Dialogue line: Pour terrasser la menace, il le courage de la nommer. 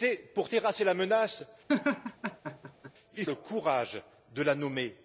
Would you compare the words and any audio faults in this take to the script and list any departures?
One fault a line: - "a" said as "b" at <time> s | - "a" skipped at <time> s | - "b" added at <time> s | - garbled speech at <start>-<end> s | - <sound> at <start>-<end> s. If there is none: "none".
- laugh at 1.7-2.9 s